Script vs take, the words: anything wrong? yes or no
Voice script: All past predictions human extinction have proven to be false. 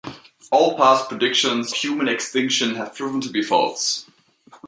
no